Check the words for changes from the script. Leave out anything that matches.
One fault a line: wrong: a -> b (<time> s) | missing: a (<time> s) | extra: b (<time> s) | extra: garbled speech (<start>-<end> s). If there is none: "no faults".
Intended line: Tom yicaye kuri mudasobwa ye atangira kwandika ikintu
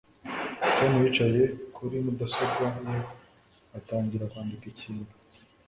no faults